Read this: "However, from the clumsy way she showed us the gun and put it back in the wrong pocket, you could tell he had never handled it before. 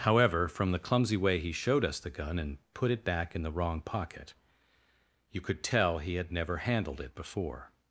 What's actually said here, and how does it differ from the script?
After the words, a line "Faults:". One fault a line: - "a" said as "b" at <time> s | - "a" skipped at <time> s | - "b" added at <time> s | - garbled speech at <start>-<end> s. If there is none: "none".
"However, from the clumsy way he showed us the gun and put it back in the wrong pocket, you could tell he had never handled it before.
Faults:
- "she" said as "he" at 1.4 s